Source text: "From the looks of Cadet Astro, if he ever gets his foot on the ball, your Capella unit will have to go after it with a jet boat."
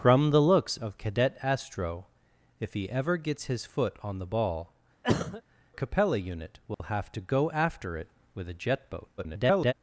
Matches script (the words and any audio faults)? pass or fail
fail